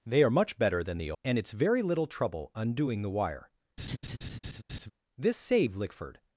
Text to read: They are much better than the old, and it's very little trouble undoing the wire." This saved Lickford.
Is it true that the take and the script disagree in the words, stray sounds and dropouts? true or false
true